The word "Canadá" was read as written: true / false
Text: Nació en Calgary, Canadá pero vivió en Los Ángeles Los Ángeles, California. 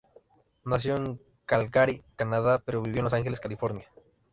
true